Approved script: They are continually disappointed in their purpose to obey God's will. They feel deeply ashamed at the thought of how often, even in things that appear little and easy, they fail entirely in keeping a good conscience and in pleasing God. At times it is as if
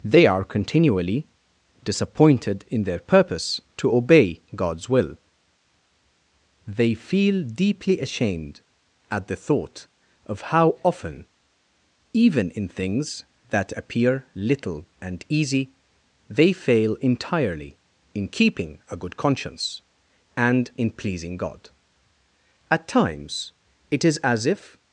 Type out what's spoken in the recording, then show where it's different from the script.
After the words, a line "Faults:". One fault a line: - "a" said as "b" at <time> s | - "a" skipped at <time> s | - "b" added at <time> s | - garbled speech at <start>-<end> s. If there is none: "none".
They are continually disappointed in their purpose to obey God's will. They feel deeply ashamed at the thought of how often, even in things that appear little and easy, they fail entirely in keeping a good conscience and in pleasing God. At times it is as if
Faults:
none